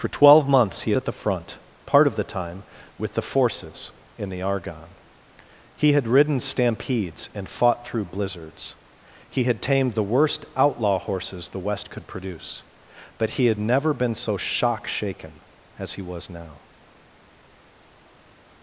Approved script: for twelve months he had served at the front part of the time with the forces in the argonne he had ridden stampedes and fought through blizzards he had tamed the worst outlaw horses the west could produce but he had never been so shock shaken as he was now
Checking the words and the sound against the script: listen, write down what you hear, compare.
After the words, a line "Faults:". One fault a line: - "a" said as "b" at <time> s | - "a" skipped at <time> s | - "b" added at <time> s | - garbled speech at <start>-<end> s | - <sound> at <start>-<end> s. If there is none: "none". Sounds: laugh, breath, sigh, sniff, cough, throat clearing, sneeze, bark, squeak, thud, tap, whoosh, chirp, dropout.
for twelve months he at the front part of the time with the forces in the argonne he had ridden stampedes and fought through blizzards he had tamed the worst outlaw horses the west could produce but he had never been so shock shaken as he was now
Faults:
- "had served" skipped at 0.9 s